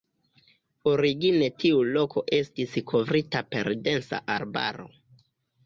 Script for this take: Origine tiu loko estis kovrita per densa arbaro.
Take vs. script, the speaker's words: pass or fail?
pass